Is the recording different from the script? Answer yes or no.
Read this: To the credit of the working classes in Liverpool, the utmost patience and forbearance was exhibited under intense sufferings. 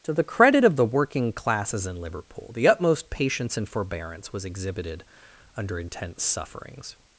no